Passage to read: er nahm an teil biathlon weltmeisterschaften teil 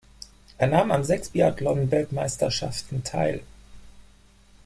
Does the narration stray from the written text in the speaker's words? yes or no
yes